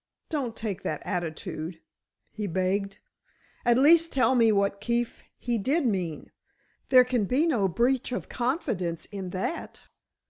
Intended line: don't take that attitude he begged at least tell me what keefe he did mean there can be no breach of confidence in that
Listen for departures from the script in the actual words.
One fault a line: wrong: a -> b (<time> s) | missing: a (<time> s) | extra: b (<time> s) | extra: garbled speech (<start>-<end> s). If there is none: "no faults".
no faults